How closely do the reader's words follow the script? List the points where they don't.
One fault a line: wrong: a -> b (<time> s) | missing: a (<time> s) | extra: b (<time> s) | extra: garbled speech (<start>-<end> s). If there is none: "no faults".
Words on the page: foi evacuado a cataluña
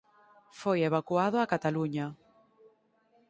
no faults